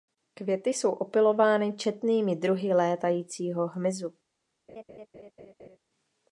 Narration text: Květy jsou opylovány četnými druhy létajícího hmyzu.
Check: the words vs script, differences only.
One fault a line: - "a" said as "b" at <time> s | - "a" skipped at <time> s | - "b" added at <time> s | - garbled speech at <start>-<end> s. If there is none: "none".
none